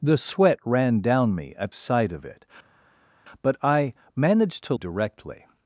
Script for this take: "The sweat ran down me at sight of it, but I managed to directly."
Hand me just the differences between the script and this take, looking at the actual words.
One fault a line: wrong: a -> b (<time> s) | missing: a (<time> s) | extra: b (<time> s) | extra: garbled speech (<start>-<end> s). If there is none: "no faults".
no faults